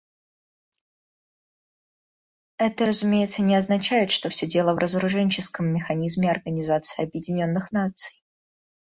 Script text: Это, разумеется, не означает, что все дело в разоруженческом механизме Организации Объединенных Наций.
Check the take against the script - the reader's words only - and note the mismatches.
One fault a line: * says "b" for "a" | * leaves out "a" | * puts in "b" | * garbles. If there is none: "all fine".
all fine